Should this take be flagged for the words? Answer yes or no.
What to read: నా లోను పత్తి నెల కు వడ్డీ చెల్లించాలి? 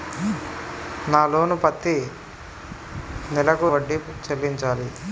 no